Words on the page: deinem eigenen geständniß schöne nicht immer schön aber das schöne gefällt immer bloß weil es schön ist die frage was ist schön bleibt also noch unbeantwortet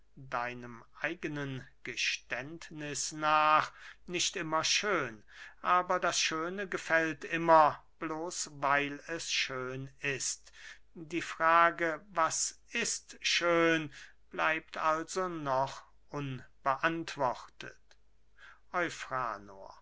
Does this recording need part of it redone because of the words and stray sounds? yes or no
yes